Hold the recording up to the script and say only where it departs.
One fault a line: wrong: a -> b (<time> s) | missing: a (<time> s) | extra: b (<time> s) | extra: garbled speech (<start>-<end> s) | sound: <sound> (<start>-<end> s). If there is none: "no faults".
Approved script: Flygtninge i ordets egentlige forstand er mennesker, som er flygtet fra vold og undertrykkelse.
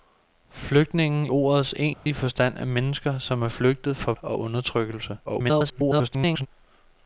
missing: i (1.3 s)
sound: dropout (1.9-2.1 s)
missing: vold (4.1 s)
extra: garbled speech (5.3-6.5 s)